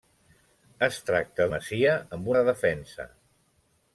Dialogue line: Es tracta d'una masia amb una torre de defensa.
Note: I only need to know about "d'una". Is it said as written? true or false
false